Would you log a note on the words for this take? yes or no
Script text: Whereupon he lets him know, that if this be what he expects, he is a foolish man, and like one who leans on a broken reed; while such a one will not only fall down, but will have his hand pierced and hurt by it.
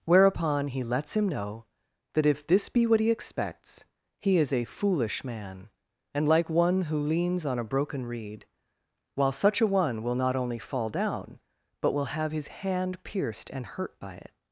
no